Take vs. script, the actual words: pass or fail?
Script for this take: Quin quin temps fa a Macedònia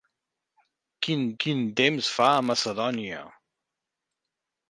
pass